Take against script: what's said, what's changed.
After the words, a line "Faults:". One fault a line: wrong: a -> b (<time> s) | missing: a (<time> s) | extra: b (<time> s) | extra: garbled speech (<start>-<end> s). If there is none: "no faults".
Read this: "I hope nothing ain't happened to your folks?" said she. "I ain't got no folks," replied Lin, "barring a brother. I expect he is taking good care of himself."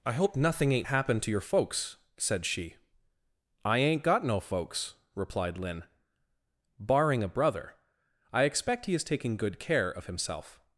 "I hope nothing ain't happened to your folks?" said she. "I ain't got no folks," replied Lin, "barring a brother. I expect he is taking good care of himself."
Faults:
no faults